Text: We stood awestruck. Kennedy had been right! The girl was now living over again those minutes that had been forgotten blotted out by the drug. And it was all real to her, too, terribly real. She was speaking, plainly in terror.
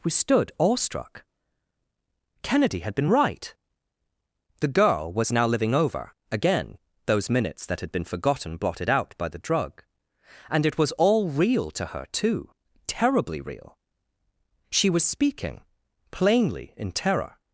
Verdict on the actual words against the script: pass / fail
pass